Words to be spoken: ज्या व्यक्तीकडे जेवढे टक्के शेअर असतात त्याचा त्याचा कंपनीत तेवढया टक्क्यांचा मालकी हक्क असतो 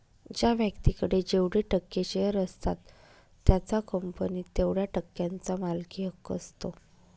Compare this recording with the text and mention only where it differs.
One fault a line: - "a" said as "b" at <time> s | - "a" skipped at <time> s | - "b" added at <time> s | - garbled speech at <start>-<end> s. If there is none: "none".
- "त्याचा" skipped at 3.8 s